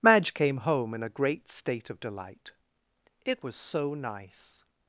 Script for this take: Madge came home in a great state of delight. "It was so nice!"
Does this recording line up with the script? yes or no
yes